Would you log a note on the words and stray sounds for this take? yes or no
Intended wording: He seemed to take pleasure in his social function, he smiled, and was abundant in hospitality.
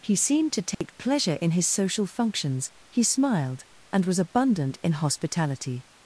yes